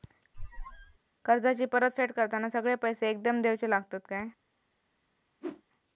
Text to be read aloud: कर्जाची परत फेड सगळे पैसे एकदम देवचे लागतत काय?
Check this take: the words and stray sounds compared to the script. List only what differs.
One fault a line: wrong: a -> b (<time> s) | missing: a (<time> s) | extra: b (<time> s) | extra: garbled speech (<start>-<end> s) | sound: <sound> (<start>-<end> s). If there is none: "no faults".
sound: squeak (0.3-1.0 s)
extra: करताना (2.1 s)
sound: whoosh (5.4-5.6 s)